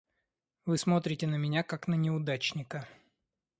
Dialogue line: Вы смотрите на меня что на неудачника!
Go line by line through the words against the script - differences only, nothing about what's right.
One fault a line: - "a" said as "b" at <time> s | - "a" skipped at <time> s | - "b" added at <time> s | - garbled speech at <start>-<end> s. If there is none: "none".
- "что" said as "как" at 1.6 s